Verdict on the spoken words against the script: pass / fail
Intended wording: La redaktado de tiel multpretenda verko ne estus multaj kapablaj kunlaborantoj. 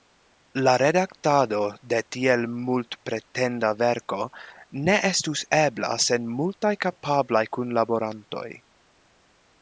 fail